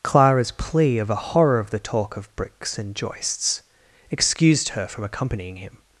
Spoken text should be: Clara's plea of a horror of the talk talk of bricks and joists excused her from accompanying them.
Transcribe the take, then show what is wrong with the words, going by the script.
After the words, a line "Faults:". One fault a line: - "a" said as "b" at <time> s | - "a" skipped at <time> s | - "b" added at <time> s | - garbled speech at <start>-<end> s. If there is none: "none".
Clara's plea of a horror of the talk of bricks and joists excused her from accompanying him.
Faults:
- "talk" skipped at 2.2 s
- "them" said as "him" at 5.6 s